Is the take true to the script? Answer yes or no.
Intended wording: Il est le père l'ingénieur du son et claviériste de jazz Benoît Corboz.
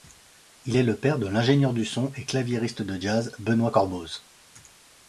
no